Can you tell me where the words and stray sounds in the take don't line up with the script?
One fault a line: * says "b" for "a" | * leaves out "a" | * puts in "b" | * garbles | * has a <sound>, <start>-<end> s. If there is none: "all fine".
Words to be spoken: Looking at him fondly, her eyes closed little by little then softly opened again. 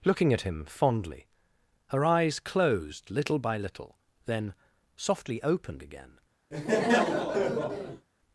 * has a laugh, 6.5-8.1 s